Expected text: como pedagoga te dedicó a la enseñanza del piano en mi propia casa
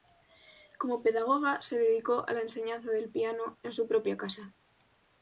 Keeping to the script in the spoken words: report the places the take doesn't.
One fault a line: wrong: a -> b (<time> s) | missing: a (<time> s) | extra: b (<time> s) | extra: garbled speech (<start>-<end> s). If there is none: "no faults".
wrong: te -> se (1.6 s)
wrong: mi -> su (3.7 s)